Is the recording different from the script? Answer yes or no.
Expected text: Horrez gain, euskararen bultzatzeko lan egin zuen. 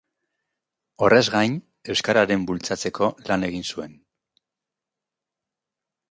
no